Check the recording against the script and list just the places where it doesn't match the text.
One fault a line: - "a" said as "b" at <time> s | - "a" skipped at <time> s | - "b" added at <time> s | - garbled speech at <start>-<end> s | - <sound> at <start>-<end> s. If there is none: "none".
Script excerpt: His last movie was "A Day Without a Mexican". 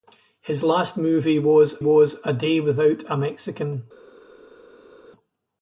- "was" added at 1.8 s